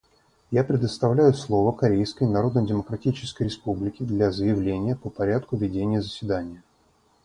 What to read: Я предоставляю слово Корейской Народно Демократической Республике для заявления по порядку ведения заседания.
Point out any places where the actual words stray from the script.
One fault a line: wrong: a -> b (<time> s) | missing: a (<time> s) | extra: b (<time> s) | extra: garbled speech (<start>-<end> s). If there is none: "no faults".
no faults